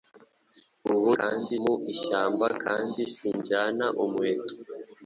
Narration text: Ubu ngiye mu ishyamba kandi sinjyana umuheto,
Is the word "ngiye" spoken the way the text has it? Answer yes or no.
no